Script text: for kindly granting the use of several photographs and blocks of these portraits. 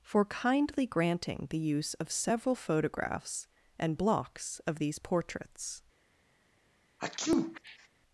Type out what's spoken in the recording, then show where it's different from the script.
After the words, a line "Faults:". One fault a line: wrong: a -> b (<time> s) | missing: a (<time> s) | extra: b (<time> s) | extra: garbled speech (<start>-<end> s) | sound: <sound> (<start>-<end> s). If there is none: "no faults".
for kindly granting the use of several photographs and blocks of these portraits.
Faults:
sound: sneeze (7.0-7.9 s)